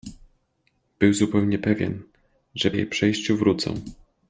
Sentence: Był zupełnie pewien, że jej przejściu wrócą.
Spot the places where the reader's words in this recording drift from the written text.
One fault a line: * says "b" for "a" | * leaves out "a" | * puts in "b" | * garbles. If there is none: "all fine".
all fine